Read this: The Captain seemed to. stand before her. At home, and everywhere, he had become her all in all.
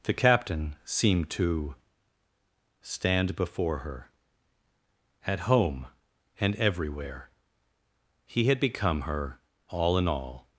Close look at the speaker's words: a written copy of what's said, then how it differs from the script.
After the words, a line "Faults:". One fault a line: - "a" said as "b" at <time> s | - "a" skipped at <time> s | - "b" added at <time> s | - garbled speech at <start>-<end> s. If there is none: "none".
The Captain seemed to. stand before her. At home, and everywhere, he had become her all in all.
Faults:
none